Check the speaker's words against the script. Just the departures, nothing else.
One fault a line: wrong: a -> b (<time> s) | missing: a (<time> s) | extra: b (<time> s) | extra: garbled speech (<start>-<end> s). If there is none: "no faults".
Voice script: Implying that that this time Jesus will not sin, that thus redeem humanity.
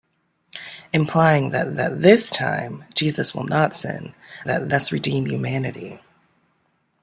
no faults